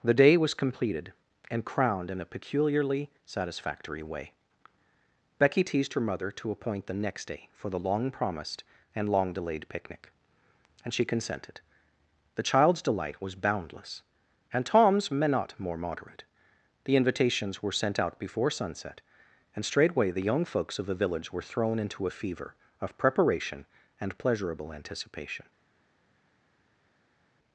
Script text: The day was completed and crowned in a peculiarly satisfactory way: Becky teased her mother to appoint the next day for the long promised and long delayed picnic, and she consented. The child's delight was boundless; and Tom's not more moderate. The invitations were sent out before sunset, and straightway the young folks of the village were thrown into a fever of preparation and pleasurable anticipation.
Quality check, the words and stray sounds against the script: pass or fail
pass